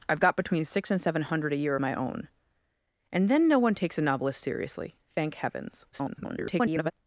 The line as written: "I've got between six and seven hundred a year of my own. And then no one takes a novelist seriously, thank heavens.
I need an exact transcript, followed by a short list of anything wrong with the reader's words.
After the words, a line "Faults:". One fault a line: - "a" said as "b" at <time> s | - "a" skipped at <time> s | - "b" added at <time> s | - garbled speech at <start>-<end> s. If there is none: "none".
"I've got between six and seven hundred a year my own. And then no one takes a novelist seriously, thank heavens. [garbled]
Faults:
- "of" skipped at 1.8 s
- garbled speech at 5.9-6.9 s